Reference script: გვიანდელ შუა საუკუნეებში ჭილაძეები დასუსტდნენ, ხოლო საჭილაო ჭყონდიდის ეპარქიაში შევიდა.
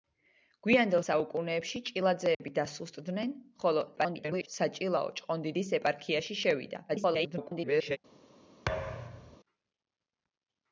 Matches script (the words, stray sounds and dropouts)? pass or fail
fail